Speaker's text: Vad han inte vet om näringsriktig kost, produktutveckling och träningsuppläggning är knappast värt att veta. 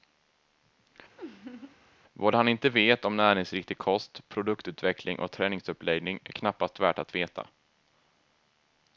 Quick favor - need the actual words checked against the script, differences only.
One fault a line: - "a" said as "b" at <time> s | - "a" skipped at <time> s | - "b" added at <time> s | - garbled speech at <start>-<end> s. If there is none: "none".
none